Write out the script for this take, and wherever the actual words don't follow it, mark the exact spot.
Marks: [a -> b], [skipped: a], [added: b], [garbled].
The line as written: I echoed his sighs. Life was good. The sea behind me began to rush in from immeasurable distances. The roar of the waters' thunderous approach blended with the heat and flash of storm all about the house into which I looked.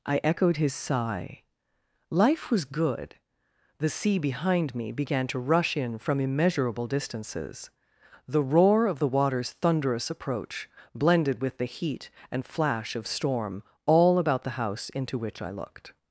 I echoed his [sighs. -> sigh] Life was good. The sea behind me began to rush in from immeasurable distances. The roar of the waters' thunderous approach blended with the heat and flash of storm all about the house into which I looked.